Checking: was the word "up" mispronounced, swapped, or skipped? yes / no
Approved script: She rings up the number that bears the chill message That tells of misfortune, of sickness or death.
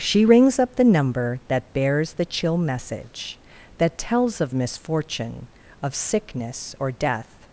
no